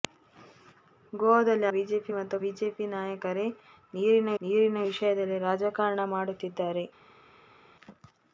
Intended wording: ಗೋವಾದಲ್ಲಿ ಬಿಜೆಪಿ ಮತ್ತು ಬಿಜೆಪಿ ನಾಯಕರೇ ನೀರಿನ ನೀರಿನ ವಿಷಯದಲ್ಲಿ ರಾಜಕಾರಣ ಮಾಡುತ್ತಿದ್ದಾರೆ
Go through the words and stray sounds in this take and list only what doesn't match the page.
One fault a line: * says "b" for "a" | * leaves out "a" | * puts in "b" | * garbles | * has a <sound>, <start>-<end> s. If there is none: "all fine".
all fine